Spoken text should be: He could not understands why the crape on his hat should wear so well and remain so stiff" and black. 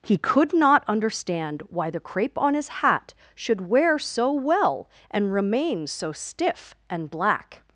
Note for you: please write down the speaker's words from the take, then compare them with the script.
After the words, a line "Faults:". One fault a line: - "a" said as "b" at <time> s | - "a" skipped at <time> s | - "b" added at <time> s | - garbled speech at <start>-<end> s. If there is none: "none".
He could not understand why the crape on his hat should wear so well and remain so stiff" and black.
Faults:
- "understands" said as "understand" at 0.9 s